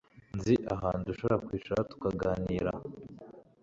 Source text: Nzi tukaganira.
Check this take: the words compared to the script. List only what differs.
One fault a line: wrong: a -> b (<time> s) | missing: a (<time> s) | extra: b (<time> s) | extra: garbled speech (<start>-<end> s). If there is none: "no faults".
extra: ahantu dushobora kwicara (0.8 s)